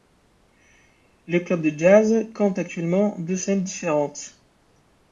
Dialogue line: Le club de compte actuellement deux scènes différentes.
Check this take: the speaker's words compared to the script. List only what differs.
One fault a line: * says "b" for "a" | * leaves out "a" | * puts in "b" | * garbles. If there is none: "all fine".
* puts in "jazz"